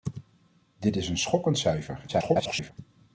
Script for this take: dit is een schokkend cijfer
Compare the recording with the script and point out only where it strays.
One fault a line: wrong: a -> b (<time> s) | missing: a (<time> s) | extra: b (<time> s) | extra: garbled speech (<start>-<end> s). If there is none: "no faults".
extra: garbled speech (2.1-2.7 s)